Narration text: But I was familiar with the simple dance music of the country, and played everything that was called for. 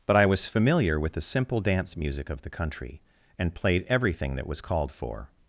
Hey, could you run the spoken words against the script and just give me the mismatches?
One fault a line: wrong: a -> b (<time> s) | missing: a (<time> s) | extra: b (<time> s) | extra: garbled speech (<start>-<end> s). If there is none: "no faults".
no faults